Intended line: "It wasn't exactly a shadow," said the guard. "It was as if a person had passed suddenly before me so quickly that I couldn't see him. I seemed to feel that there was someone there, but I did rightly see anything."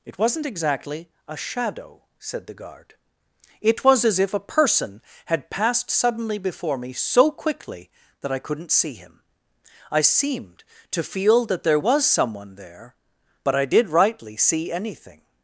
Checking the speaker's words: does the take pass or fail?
pass